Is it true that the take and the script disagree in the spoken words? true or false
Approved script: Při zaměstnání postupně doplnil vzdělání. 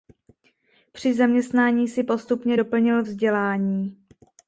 true